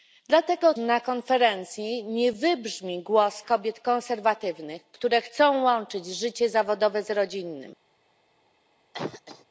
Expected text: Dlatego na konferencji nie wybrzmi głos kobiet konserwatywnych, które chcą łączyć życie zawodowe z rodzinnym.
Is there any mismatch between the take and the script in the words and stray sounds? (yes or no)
yes